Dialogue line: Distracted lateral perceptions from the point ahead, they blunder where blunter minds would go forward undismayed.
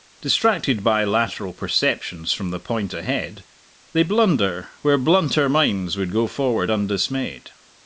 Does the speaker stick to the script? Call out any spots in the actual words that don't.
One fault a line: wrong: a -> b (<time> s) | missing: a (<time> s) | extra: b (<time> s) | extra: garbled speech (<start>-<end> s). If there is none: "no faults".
extra: by (0.8 s)